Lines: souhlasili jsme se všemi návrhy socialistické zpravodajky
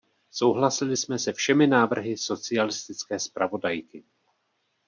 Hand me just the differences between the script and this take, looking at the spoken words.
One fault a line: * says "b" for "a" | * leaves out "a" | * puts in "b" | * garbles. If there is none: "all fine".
all fine